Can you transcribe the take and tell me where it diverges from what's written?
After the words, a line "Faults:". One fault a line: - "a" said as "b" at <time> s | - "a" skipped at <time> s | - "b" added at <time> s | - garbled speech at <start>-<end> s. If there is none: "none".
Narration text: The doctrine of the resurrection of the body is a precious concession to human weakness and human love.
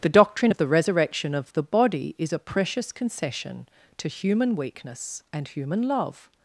The doctrine of the resurrection of the body is a precious concession to human weakness and human love.
Faults:
none